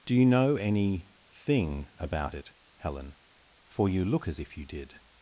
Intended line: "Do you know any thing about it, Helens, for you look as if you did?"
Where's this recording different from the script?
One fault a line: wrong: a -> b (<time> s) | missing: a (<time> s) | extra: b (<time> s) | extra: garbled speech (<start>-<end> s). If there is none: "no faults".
wrong: Helens -> Helen (2.8 s)